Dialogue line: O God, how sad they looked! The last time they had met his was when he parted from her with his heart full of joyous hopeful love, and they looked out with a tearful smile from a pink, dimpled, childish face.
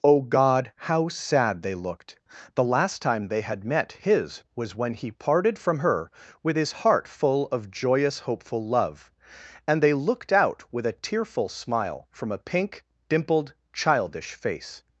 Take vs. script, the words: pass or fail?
pass